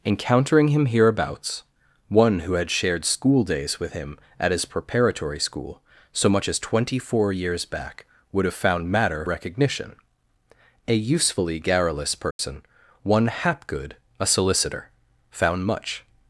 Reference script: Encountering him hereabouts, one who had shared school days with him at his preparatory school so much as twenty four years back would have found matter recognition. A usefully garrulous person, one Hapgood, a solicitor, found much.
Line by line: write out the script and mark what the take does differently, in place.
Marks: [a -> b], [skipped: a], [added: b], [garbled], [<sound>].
Encountering him hereabouts, one who had shared school days with him at his preparatory school so much as twenty four years back would have found matter recognition. A usefully garrulous person, [dropout] one Hapgood, a solicitor, found much.